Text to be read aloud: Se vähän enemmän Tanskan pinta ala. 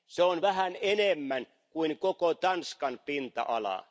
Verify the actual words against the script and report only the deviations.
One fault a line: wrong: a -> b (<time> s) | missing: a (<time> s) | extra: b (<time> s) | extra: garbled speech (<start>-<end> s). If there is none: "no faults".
extra: on (0.2 s)
extra: kuin koko (1.7 s)